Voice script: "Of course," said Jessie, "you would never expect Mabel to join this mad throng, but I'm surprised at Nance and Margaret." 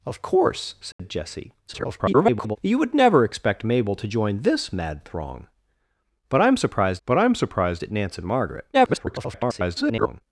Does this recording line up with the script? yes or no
no